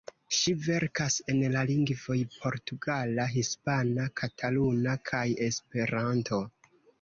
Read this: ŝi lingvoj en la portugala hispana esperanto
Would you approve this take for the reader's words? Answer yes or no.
no